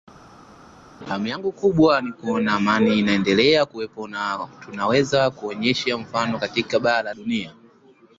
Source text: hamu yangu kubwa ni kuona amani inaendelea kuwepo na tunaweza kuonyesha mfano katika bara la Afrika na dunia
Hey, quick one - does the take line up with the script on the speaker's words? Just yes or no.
no